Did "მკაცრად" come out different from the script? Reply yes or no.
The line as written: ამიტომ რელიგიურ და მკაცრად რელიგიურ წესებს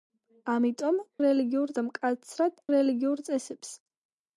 no